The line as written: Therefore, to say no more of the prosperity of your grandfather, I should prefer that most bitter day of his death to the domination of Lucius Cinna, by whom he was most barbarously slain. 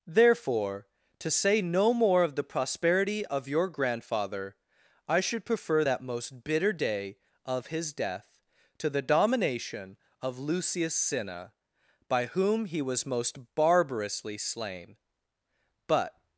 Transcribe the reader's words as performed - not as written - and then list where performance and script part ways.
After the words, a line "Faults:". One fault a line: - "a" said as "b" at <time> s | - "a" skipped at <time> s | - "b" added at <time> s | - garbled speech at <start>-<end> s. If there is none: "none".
Therefore, to say no more of the prosperity of your grandfather, I should prefer that most bitter day of his death to the domination of Lucius Cinna, by whom he was most barbarously slain. But
Faults:
- "But" added at 15.9 s